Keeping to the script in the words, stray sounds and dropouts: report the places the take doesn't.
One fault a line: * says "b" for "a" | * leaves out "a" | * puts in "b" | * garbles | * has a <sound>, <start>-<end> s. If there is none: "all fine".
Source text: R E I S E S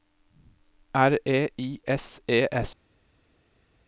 all fine